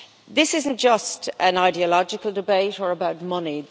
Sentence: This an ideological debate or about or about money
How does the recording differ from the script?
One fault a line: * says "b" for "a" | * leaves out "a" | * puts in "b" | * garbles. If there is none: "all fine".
* puts in "isn't just"
* leaves out "or about"